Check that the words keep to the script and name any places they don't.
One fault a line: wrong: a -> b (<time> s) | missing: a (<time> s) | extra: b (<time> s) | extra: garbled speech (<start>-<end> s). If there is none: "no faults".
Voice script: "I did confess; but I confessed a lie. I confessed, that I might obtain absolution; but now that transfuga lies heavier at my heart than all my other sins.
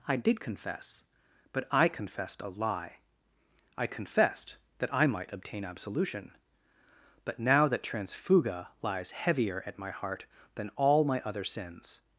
no faults